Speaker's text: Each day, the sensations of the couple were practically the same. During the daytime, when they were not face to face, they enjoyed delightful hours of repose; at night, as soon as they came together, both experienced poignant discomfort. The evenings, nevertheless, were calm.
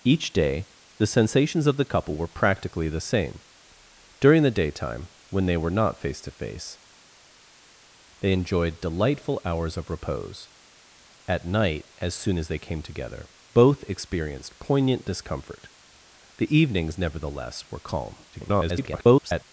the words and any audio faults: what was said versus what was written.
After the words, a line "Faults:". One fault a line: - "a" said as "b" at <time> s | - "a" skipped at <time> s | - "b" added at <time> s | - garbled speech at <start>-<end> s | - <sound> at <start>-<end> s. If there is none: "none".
Each day, the sensations of the couple were practically the same. During the daytime, when they were not face to face, they enjoyed delightful hours of repose; at night, as soon as they came together, both experienced poignant discomfort. The evenings, nevertheless, were calm. [garbled]
Faults:
- garbled speech at 18.3-19.4 s